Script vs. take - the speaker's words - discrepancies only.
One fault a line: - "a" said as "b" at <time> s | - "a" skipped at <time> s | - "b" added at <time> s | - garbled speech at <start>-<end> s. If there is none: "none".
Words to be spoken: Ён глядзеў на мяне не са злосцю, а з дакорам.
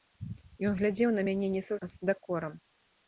- "злосцю" skipped at 1.8 s